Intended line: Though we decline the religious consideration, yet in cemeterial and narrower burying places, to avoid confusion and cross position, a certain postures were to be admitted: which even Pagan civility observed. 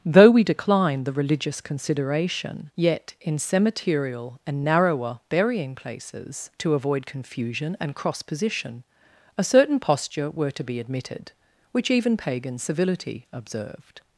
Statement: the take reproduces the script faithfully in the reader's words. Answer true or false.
false